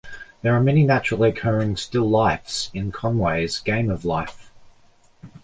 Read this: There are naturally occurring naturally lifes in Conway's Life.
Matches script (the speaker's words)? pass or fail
fail